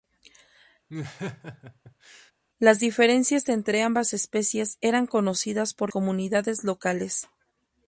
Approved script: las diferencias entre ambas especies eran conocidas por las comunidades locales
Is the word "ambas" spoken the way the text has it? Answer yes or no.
yes